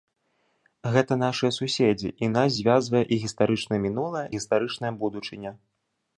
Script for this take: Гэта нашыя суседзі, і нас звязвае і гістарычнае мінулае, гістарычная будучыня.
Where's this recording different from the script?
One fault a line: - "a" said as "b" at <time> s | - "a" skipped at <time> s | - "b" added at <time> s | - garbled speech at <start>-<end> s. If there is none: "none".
none